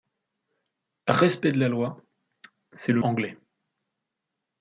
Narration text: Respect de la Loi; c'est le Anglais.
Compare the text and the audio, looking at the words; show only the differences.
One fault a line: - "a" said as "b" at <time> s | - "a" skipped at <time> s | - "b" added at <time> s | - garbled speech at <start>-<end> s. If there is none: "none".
none